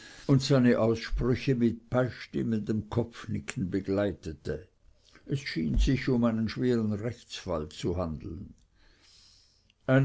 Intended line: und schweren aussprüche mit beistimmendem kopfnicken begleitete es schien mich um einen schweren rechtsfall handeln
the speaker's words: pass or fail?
fail